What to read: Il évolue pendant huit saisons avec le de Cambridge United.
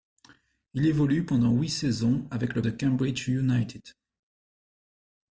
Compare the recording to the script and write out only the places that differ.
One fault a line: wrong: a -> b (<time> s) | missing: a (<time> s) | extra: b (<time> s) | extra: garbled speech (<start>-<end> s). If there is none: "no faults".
no faults